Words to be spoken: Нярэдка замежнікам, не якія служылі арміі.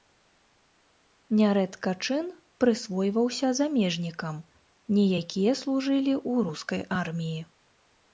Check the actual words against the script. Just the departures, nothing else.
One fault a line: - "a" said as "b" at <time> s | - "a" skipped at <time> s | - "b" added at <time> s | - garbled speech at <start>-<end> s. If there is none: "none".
- "чын прысвойваўся" added at 2.0 s
- "ў рускай" added at 6.3 s